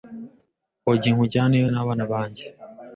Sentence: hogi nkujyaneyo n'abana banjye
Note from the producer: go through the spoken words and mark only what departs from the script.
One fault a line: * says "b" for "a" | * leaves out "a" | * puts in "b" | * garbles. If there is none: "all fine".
all fine